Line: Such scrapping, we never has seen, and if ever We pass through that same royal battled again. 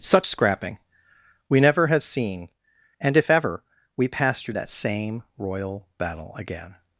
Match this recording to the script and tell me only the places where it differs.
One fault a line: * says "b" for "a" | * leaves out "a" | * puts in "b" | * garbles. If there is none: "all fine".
* says "have" for "has"
* says "battle" for "battled"